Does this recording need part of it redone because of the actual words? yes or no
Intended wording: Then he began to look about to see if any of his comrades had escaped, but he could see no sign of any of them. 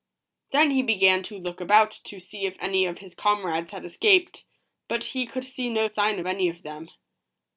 no